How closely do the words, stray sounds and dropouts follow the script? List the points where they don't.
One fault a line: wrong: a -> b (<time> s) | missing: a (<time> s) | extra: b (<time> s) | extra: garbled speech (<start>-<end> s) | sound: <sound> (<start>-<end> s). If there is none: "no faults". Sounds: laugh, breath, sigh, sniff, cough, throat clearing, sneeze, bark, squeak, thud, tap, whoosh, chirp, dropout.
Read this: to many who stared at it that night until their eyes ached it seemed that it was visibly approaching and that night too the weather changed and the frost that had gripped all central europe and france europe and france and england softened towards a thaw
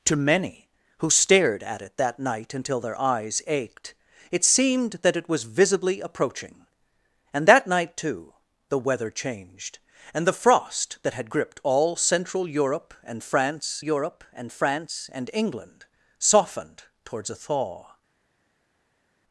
no faults